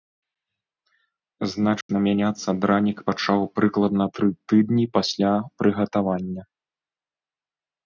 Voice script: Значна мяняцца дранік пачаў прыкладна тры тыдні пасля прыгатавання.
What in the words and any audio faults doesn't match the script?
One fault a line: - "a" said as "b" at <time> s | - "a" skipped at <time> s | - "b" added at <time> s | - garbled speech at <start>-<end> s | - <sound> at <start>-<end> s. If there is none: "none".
- dropout at 1.8-1.9 s